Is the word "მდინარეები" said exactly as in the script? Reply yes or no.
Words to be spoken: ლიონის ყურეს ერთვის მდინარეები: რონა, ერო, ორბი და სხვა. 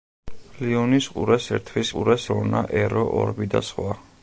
no